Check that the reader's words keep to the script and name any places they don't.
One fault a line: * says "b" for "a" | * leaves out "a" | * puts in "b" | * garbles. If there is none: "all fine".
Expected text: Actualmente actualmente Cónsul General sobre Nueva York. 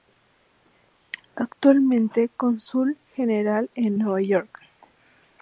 * leaves out "actualmente"
* says "en" for "sobre"